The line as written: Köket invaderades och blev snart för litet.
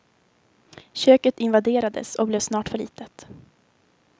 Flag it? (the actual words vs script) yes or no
no